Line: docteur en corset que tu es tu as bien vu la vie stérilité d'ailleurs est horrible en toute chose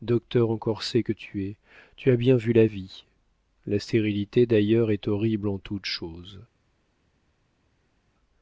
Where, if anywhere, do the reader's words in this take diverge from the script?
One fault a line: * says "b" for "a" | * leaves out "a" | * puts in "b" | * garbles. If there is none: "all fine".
* puts in "la"